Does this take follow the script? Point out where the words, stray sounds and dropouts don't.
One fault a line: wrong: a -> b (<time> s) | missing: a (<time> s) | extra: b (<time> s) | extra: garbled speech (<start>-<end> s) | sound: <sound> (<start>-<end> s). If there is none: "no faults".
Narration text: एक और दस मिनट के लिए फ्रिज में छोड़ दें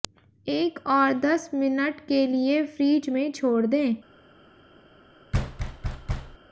sound: thud (5.3-6.4 s)